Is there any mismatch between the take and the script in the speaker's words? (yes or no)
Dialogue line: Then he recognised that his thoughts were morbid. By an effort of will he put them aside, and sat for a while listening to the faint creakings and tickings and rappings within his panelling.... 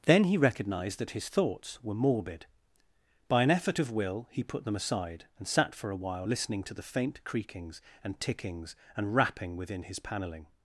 yes